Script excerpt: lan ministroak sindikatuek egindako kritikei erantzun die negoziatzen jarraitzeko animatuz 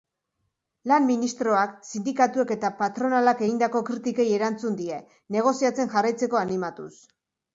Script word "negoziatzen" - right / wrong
right